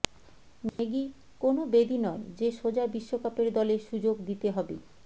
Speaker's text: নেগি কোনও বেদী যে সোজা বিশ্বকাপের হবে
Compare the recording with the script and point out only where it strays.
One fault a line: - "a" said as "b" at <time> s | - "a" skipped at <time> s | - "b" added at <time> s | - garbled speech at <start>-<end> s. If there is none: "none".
- "নয়" added at 2.0 s
- "দলে সুযোগ দিতে" added at 3.5 s